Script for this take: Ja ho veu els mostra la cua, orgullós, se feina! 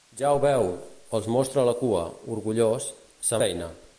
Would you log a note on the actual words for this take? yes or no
no